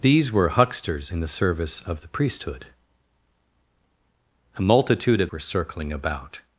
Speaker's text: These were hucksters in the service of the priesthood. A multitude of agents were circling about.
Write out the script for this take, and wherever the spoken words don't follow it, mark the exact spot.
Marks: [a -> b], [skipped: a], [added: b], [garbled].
These were hucksters in the service of the priesthood. A multitude of [skipped: agents] were circling about.